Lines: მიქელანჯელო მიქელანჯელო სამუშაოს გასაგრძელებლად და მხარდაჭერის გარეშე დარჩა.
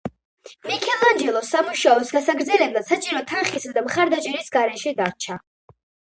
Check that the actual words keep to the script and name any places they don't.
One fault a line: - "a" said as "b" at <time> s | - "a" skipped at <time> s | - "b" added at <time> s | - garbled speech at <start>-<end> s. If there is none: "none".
- "მიქელანჯელო" skipped at 1.4 s
- "საჭირო თანხისა" added at 2.9 s